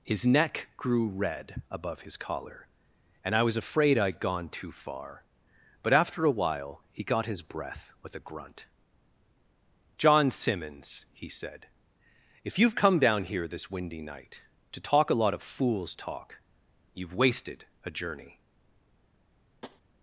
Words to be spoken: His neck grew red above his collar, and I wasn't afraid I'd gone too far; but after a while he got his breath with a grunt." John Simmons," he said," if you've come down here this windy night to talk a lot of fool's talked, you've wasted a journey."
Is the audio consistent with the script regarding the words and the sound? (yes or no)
no